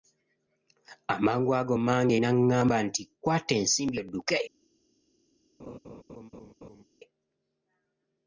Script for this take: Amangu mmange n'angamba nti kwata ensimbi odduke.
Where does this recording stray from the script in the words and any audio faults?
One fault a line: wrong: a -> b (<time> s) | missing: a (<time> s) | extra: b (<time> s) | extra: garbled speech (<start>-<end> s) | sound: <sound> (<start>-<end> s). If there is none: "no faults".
extra: ago (1.6 s)
sound: laugh (5.6-6.8 s)